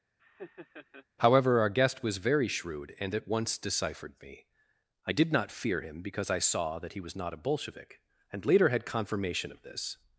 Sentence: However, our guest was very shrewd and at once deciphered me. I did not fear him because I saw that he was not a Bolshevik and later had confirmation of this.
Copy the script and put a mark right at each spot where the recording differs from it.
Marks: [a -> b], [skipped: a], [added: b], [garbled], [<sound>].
[laugh] However, our guest was very shrewd and at once deciphered me. I did not fear him because I saw that he was not a Bolshevik and later had confirmation of this.